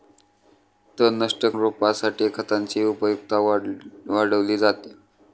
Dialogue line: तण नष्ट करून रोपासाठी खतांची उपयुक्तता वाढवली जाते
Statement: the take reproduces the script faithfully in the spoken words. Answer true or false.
false